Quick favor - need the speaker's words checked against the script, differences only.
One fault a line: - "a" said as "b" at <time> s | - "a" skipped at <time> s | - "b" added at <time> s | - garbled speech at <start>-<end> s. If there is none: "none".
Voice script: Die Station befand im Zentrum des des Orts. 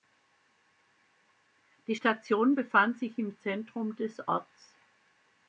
- "sich" added at 3.0 s
- "des" skipped at 4.3 s